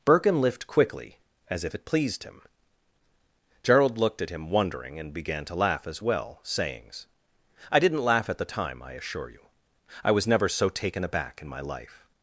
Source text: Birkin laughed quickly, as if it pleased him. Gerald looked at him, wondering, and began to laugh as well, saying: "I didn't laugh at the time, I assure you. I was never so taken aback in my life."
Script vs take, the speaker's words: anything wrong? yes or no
yes